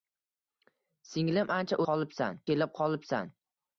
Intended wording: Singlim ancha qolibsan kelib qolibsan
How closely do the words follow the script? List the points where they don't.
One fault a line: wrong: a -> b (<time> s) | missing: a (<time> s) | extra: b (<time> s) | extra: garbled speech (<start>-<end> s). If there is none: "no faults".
no faults